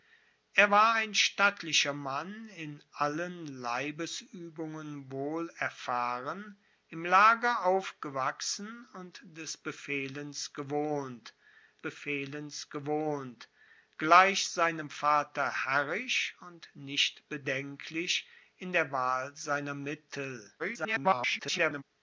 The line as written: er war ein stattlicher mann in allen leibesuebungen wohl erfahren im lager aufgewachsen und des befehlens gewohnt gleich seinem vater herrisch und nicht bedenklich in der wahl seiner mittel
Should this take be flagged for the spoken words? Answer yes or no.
yes